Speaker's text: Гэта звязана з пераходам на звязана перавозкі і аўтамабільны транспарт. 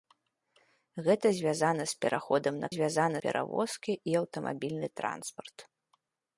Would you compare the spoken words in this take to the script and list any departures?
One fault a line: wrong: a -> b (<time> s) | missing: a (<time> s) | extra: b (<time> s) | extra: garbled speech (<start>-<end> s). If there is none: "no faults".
no faults